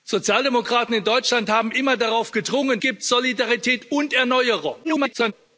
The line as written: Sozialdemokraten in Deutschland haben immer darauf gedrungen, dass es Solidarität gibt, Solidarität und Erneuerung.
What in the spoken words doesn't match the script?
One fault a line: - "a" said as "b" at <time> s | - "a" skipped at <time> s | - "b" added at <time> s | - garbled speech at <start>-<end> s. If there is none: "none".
- "dass es Solidarität" skipped at 2.8 s
- garbled speech at 4.8-5.3 s